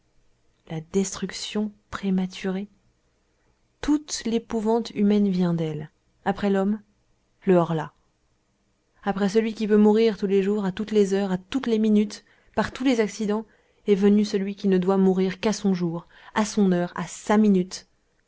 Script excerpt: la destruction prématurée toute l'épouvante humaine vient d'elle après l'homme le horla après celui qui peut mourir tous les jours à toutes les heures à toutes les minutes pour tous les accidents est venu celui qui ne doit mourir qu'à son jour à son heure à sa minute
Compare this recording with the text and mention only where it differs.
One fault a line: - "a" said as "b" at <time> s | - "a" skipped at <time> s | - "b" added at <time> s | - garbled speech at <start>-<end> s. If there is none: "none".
- "pour" said as "par" at 12.6 s